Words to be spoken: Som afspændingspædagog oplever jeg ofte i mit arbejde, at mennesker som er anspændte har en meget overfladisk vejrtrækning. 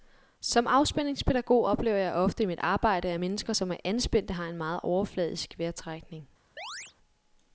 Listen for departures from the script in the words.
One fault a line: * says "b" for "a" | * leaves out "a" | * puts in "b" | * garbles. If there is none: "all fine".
all fine